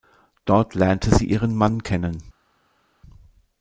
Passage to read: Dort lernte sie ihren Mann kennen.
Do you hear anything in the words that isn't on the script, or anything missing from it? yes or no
no